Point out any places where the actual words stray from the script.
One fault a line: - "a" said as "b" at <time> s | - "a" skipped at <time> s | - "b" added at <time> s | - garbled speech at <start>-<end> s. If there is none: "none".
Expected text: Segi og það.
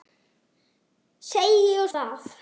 none